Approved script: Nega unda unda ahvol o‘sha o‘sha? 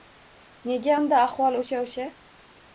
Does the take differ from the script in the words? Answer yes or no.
yes